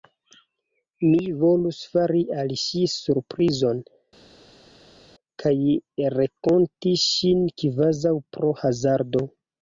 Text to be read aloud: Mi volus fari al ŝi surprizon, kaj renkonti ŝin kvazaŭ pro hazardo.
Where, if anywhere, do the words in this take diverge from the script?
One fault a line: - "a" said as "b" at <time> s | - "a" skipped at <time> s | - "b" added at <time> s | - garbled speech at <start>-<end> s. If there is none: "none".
none